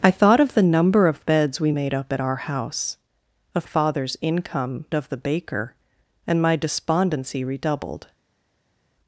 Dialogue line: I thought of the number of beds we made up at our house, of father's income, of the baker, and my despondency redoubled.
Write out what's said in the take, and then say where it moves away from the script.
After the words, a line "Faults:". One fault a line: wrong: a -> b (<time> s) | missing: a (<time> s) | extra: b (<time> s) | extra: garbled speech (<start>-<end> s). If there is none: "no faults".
I thought of the number of beds we made up at our house, of father's income, of the baker, and my despondency redoubled.
Faults:
no faults